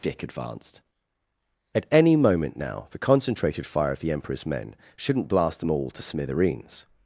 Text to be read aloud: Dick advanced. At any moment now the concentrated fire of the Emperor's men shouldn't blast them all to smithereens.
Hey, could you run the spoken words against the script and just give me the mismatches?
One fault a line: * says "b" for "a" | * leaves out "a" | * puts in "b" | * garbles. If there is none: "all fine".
all fine